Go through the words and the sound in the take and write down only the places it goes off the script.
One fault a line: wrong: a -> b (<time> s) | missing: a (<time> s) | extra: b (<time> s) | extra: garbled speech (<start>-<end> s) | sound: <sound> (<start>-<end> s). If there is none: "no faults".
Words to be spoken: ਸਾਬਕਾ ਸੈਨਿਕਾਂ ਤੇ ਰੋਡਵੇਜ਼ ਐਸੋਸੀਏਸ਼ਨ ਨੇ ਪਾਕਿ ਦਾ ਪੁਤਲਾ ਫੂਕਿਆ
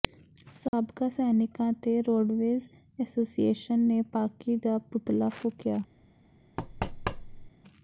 sound: dropout (0.7-0.7 s)
sound: thud (6.6-7.5 s)